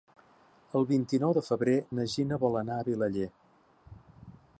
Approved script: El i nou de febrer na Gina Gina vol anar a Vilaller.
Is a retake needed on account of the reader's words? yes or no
yes